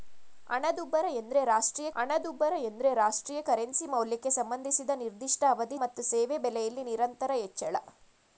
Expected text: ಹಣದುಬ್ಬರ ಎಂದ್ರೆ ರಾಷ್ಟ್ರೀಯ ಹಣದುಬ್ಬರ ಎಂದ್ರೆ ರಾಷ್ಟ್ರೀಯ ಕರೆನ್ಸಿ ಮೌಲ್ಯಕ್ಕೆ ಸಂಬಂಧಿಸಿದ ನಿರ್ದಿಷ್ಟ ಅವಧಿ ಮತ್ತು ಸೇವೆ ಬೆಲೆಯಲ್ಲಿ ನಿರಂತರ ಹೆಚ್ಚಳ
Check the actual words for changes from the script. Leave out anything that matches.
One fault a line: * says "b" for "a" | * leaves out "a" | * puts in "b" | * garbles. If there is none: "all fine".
all fine